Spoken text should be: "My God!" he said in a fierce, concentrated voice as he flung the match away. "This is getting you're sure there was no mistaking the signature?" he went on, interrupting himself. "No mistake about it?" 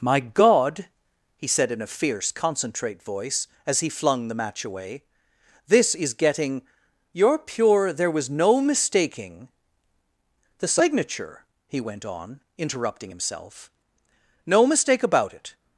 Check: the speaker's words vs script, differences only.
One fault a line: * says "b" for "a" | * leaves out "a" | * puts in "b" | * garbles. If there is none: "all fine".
* says "concentrate" for "concentrated"
* says "pure" for "sure"